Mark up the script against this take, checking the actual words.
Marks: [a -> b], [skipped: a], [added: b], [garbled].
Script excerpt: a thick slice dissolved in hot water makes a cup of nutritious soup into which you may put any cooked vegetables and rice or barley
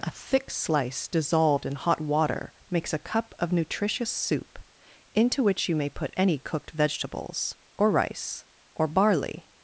a thick slice dissolved in hot water makes a cup of nutritious soup into which you may put any cooked vegetables [and -> or] rice or barley